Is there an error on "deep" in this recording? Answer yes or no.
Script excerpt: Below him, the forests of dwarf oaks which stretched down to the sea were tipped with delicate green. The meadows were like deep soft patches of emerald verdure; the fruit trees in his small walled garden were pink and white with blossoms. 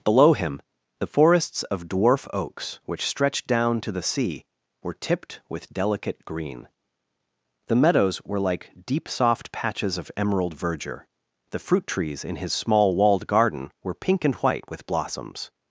no